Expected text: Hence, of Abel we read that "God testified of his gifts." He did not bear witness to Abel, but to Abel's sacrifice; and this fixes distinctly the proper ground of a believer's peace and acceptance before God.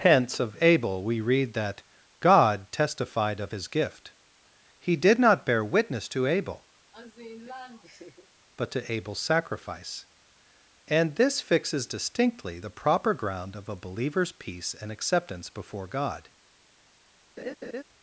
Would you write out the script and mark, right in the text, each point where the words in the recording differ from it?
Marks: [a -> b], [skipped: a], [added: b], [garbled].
Hence, of Abel we read that "God testified of his [gifts." -> gift] He did not bear witness to Abel, but to Abel's sacrifice; and this fixes distinctly the proper ground of a believer's peace and acceptance before God.